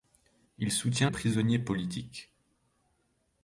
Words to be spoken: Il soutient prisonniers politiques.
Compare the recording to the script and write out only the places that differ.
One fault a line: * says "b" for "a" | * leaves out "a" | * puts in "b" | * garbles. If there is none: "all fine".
all fine